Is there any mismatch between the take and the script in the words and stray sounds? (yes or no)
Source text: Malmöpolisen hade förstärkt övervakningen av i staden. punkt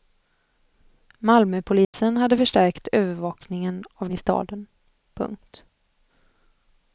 yes